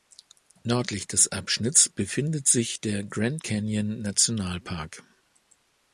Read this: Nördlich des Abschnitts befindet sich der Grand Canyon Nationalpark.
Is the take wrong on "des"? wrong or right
right